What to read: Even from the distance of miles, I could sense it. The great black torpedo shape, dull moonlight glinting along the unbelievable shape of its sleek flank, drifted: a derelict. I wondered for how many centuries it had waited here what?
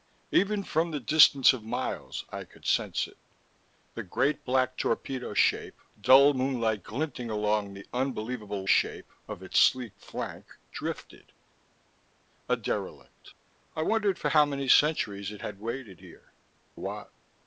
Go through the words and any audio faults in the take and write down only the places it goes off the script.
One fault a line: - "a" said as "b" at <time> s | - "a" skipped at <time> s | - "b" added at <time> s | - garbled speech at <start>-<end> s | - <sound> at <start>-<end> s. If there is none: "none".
none